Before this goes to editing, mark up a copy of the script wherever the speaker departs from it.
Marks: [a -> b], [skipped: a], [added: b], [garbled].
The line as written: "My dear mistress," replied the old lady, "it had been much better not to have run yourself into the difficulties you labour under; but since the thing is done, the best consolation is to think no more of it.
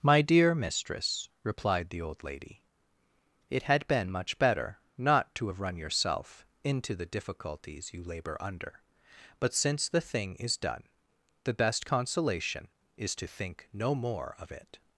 "My dear mistress," replied the old lady, "it had been much better not to have run yourself into the difficulties you labour under; but since the thing is done, the best consolation is to think no more of it.